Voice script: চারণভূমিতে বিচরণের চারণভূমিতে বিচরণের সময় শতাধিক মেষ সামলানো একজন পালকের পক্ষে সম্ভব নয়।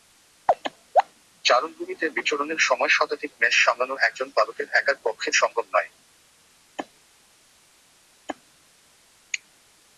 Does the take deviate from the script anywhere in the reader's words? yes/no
yes